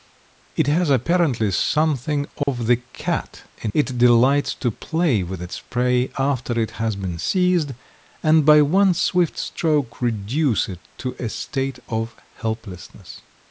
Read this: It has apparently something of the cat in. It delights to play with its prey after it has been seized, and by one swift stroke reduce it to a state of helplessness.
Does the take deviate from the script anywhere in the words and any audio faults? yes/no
yes